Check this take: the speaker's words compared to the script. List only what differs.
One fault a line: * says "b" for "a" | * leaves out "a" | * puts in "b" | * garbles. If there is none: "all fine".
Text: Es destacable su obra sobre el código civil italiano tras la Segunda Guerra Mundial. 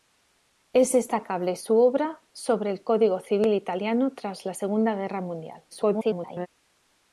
* garbles